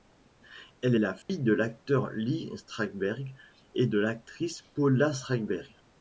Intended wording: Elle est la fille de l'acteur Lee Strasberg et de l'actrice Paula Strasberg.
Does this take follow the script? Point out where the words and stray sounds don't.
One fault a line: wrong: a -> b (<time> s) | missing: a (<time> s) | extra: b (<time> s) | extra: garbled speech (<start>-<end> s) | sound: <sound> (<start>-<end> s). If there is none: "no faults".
missing: est (0.9 s)
sound: dropout (1.2-1.3 s)